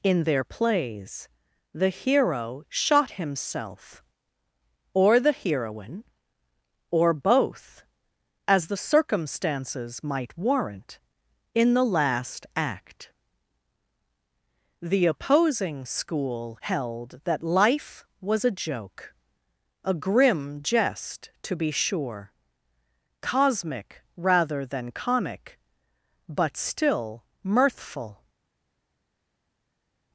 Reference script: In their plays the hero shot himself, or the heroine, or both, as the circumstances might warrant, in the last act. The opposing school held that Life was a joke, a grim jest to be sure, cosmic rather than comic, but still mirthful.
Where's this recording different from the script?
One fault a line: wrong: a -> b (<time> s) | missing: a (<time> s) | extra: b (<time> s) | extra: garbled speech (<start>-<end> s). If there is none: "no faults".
no faults